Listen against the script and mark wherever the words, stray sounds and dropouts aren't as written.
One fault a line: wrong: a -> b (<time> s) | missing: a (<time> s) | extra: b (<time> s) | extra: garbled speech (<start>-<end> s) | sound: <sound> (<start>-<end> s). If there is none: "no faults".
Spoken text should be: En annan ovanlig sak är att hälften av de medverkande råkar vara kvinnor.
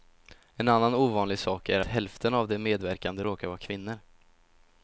missing: att (1.8 s)